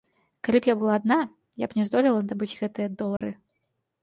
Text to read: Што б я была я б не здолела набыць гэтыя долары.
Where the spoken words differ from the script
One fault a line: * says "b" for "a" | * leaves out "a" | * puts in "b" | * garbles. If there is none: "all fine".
* says "Калі" for "Што"
* puts in "адна"